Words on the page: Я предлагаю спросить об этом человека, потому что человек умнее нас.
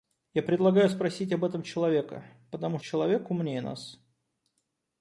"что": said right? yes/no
no